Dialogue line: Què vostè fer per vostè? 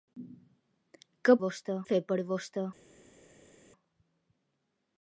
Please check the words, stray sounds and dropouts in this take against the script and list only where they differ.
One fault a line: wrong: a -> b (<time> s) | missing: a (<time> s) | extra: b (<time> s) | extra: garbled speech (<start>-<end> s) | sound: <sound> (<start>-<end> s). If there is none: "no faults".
no faults